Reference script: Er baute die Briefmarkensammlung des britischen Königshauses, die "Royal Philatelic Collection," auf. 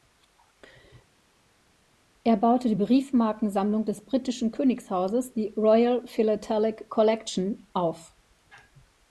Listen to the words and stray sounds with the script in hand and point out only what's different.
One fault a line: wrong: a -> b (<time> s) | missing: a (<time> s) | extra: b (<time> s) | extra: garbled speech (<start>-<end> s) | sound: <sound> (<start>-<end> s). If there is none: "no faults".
no faults